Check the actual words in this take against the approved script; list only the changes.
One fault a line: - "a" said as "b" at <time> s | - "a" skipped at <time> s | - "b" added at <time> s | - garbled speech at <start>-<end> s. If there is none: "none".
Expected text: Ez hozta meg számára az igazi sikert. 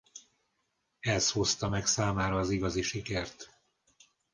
none